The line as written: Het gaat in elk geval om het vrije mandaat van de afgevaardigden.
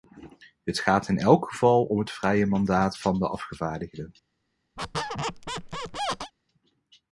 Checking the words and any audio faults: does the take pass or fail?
fail